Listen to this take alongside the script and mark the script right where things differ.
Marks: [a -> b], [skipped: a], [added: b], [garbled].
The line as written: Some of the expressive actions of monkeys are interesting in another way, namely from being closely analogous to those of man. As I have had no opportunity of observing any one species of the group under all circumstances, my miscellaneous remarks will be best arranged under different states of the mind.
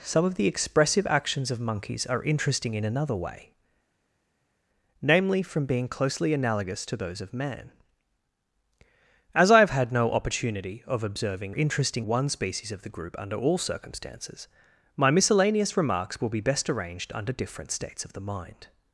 Some of the expressive actions of monkeys are interesting in another way, namely from being closely analogous to those of man. As I have had no opportunity of observing [any -> interesting] one species of the group under all circumstances, my miscellaneous remarks will be best arranged under different states of the mind.